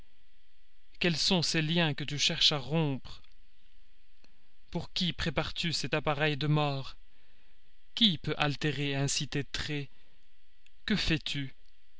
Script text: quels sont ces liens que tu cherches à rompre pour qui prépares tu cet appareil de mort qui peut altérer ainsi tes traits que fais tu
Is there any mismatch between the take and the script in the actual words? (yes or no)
no